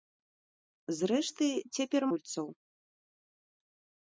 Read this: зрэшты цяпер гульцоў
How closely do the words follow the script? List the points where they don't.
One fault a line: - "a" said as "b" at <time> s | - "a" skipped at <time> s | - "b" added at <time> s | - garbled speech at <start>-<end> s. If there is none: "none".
none